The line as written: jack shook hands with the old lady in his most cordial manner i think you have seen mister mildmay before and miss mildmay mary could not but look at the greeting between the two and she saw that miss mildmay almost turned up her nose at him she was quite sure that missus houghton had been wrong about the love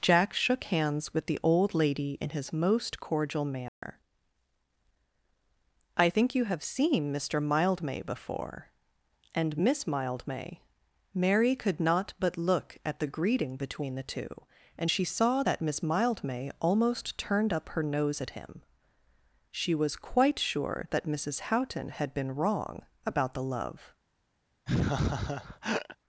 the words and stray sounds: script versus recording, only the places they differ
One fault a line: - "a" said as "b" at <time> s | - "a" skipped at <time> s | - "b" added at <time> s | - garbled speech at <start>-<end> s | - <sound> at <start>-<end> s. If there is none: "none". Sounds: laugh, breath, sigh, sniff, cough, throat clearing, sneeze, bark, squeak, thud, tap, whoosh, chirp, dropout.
- dropout at 3.7-3.8 s
- laugh at 24.7-26.0 s